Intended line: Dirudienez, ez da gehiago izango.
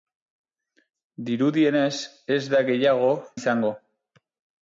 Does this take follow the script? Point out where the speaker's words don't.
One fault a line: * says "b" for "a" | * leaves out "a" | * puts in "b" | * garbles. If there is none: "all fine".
all fine